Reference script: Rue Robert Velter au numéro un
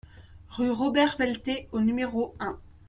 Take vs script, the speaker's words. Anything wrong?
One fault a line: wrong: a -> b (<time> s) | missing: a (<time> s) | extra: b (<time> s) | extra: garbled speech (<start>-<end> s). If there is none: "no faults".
no faults